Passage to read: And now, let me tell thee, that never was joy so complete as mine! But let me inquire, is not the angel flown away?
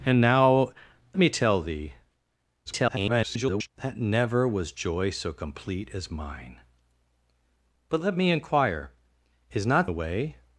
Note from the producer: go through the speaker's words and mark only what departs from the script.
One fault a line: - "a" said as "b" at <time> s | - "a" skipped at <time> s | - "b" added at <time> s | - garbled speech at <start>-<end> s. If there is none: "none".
- "let" skipped at 0.7 s
- garbled speech at 2.7-3.7 s
- "the angel flown" skipped at 9.9 s